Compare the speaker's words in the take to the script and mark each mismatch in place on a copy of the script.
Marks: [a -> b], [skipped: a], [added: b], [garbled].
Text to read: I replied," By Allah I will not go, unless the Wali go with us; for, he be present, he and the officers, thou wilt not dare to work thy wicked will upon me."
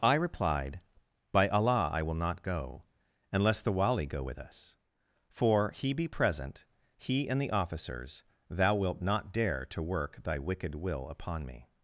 I replied," By Allah I will not go, unless the Wali go with us; for, he be present, he and the officers, thou wilt not dare to work thy wicked will upon me."